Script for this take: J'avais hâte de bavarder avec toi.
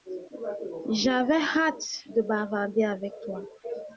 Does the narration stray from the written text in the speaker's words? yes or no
no